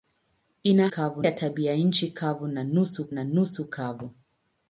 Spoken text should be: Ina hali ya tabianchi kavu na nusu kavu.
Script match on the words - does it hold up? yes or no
no